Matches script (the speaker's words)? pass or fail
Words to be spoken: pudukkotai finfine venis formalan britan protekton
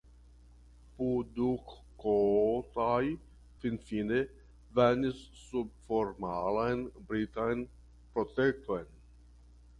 fail